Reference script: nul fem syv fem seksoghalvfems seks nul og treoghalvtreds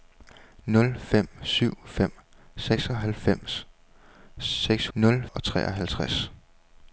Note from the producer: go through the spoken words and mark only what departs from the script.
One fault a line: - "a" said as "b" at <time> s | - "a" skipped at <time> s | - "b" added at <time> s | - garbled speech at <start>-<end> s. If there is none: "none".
none